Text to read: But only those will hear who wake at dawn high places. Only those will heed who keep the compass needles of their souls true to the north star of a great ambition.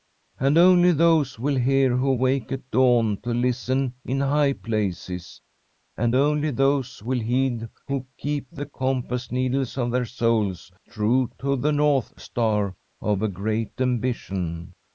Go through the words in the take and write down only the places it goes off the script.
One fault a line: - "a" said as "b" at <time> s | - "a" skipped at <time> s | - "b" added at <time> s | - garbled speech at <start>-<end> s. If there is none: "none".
- "But" said as "And" at 0.4 s
- "to listen in" added at 3.2 s
- "And" added at 6.0 s